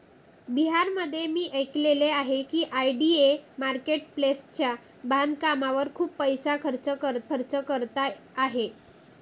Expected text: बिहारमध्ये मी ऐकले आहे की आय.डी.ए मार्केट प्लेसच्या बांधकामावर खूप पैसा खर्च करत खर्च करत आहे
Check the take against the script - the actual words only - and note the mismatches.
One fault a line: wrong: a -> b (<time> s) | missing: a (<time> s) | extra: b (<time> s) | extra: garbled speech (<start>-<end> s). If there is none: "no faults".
no faults